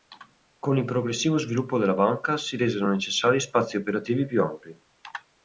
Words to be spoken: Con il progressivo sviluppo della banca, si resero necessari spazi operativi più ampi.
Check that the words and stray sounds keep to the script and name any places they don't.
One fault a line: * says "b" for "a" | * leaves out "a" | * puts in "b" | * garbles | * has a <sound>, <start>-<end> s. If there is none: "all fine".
all fine